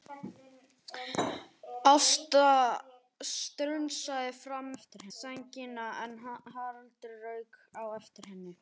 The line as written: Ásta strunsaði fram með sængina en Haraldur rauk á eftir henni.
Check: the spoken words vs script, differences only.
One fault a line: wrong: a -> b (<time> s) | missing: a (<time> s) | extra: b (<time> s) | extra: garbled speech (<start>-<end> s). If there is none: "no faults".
wrong: með -> eftir (4.8 s)